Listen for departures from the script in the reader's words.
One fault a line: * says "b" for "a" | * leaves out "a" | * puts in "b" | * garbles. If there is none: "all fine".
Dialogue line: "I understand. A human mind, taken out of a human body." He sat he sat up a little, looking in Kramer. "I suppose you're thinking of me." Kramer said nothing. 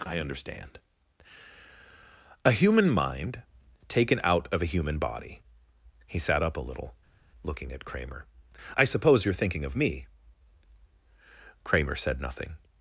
* leaves out "he sat"
* says "at" for "in"